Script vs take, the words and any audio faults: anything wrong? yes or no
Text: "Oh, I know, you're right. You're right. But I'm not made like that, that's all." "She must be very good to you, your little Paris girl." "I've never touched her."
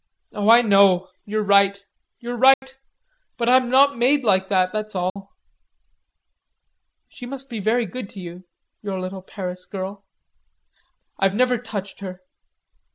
yes